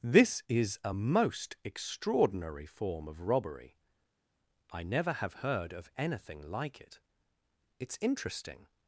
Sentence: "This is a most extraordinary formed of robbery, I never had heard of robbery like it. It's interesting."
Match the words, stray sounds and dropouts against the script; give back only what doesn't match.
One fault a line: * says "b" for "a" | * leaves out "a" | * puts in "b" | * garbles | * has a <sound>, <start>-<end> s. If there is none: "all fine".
* says "form" for "formed"
* says "have" for "had"
* says "anything" for "robbery"